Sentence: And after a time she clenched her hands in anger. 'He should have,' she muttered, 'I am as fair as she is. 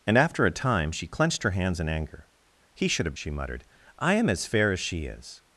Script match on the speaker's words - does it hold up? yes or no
yes